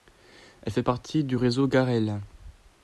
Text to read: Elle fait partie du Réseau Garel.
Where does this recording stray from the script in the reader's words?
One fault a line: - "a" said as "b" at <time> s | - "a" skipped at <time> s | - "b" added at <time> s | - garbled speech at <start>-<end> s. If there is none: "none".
none